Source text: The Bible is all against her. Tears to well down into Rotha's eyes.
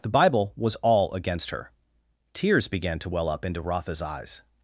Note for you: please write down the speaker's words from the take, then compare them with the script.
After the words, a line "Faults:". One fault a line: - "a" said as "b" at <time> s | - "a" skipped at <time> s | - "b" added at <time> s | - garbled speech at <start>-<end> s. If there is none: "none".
The Bible was all against her. Tears began to well up into Rotha's eyes.
Faults:
- "is" said as "was" at 0.6 s
- "began" added at 2.7 s
- "down" said as "up" at 3.3 s